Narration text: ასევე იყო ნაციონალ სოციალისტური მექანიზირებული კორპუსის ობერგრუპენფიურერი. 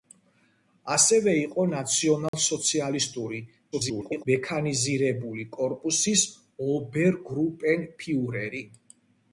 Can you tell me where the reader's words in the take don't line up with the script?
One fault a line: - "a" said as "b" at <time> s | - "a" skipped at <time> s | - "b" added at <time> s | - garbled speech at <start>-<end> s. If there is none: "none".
- garbled speech at 3.7-4.3 s